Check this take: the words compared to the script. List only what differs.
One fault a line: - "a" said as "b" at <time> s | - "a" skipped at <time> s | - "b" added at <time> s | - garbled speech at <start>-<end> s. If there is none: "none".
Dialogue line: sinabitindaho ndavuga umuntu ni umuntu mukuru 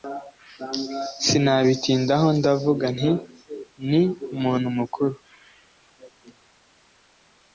- "umuntu" said as "nti" at 3.0 s